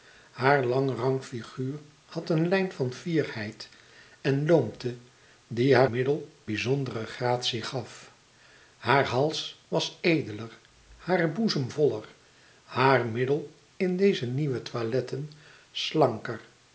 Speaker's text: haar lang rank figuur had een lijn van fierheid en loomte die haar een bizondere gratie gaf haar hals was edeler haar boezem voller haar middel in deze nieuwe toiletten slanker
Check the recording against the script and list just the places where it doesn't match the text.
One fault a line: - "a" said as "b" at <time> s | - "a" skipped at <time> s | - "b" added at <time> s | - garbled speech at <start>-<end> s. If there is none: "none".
- "een" said as "middel" at 5.8 s